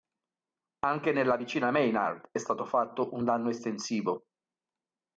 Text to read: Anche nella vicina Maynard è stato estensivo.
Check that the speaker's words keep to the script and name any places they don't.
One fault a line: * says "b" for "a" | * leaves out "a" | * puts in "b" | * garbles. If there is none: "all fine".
* puts in "fatto un danno"